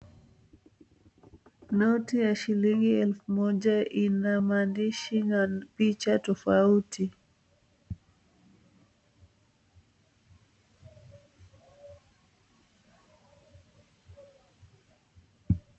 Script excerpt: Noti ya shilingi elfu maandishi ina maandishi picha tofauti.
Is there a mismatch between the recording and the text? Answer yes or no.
yes